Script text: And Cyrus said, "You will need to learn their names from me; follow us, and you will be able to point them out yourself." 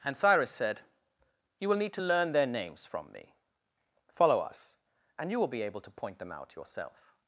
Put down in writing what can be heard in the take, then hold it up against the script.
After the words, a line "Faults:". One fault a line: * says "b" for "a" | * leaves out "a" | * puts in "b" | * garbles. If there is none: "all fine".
And Cyrus said, "You will need to learn their names from me; follow us, and you will be able to point them out yourself."
Faults:
all fine